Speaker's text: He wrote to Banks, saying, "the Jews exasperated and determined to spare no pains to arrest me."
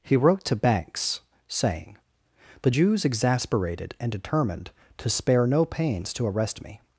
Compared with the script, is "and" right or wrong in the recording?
right